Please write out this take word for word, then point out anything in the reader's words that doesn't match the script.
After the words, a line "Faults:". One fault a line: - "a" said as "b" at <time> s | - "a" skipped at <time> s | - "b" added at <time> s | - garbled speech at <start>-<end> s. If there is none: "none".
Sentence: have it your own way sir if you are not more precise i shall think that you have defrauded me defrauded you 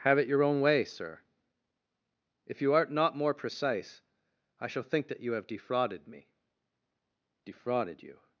have it your own way sir if you art not more precise i shall think that you have defrauded me defrauded you
Faults:
- "are" said as "art" at 2.7 s